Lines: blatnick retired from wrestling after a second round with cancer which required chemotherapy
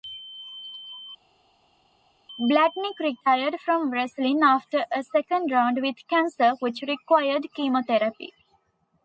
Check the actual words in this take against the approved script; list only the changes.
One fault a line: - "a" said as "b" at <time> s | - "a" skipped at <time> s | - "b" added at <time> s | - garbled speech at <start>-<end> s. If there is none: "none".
none